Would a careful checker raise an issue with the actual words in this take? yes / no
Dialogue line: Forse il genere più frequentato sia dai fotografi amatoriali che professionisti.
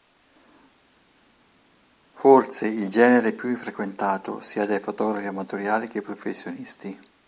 no